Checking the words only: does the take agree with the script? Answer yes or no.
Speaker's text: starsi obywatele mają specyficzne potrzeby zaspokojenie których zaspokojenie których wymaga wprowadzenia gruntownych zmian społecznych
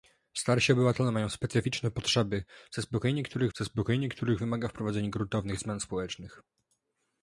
yes